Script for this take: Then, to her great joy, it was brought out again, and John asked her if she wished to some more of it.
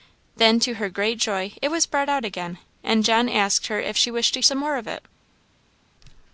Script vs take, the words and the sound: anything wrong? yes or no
no